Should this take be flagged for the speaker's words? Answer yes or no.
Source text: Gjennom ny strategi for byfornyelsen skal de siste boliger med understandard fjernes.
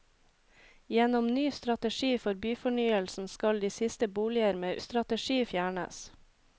yes